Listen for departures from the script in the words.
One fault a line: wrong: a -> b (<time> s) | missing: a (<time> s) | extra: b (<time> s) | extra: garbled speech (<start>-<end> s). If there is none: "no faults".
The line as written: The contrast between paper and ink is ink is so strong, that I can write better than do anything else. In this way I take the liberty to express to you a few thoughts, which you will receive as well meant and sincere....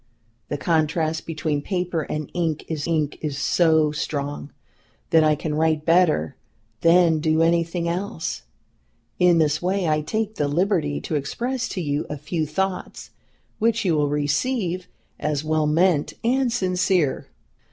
no faults